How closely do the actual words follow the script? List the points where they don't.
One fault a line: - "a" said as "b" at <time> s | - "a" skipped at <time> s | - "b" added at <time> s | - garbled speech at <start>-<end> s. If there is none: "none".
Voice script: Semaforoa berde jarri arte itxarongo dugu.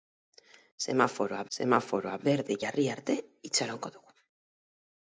- "semaforoa" added at 1.6 s